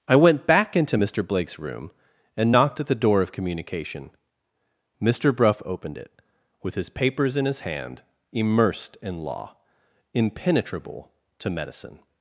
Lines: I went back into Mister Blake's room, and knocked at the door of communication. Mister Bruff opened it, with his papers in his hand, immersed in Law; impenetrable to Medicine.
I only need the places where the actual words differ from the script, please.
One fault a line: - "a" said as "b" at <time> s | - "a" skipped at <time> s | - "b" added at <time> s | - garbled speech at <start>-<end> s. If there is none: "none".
none